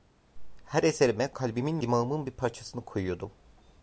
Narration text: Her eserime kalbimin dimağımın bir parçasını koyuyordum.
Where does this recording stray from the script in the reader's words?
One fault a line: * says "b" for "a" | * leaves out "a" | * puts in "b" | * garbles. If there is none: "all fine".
all fine